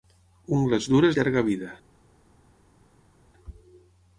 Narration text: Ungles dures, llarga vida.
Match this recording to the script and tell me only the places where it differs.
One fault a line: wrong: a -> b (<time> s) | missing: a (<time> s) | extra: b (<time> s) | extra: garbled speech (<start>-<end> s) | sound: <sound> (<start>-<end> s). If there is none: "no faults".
no faults